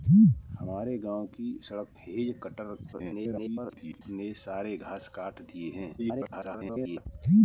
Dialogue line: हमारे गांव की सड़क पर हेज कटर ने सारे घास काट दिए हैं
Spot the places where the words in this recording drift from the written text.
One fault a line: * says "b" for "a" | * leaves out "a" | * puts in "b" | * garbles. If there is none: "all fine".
* leaves out "पर"
* garbles
* garbles